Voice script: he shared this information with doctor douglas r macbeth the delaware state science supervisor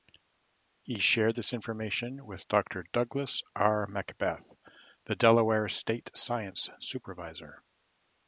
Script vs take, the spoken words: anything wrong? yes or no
no